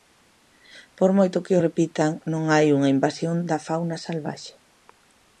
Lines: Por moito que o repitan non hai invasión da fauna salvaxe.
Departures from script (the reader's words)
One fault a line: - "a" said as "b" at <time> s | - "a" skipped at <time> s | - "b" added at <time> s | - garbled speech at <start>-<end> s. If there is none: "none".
- "unha" added at 2.8 s